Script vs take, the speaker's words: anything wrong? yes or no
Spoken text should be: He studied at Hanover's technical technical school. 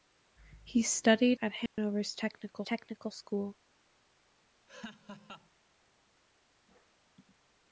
no